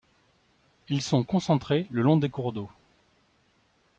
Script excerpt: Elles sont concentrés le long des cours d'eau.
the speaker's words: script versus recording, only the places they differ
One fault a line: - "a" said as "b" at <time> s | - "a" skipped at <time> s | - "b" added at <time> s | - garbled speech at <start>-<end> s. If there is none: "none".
- "Elles" said as "Ils" at 0.9 s